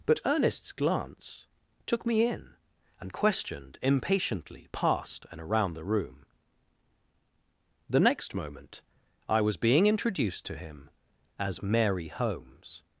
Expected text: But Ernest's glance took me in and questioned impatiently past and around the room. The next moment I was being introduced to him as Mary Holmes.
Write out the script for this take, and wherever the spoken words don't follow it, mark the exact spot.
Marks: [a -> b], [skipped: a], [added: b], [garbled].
But Ernest's glance took me in and questioned impatiently past and around the room. The next moment I was being introduced to him as Mary Holmes.